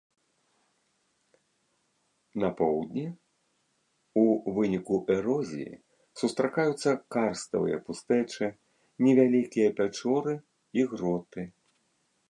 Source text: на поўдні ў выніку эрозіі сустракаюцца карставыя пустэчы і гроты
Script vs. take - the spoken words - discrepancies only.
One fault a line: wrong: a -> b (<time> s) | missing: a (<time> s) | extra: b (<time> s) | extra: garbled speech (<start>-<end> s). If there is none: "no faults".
extra: невялікія пячоры (9.1 s)